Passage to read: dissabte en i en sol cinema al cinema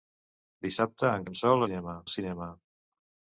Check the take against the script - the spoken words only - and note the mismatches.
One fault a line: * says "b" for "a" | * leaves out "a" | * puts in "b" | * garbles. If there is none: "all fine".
all fine